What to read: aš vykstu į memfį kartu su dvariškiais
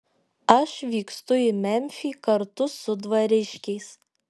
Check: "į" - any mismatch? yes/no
no